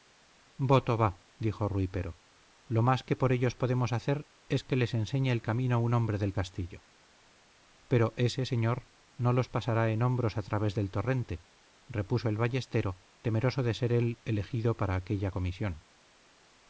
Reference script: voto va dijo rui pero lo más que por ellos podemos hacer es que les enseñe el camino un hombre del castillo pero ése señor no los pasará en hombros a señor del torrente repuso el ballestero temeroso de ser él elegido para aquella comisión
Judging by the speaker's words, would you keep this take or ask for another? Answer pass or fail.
fail